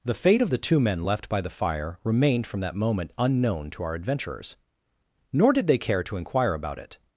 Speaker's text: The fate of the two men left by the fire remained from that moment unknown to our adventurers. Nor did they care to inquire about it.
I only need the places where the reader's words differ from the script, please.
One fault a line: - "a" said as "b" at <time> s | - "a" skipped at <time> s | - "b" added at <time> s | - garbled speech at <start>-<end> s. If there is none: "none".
none